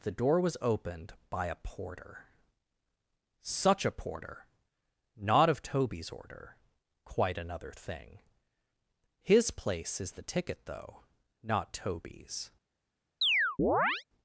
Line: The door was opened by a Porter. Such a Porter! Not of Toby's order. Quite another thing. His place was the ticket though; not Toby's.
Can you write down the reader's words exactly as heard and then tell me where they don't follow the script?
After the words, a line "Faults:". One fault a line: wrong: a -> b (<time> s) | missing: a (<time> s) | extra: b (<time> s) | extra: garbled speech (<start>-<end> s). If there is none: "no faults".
The door was opened by a Porter. Such a Porter! Not of Toby's order. Quite another thing. His place is the ticket though; not Toby's.
Faults:
wrong: was -> is (10.0 s)